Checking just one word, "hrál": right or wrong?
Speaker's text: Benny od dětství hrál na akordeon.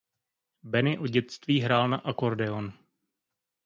right